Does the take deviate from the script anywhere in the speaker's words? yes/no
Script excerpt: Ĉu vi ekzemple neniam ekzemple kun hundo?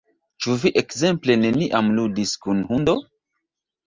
yes